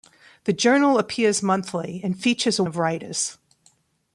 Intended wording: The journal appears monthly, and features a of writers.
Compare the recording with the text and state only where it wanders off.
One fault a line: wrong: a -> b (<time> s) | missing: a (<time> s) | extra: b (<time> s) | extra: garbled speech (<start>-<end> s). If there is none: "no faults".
no faults